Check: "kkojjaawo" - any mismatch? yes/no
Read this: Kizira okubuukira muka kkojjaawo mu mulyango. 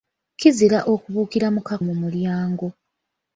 yes